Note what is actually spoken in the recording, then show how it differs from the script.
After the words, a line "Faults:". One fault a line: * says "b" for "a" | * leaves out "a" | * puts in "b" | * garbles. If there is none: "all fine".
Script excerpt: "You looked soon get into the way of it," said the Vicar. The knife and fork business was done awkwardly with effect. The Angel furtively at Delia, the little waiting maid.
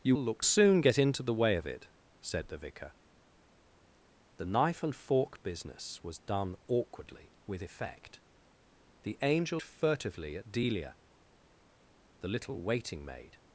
"You looked soon get into the way of it," said the Vicar. The knife and fork business was done awkwardly with effect. The Angel furtively at Delia, the little waiting maid.
Faults:
all fine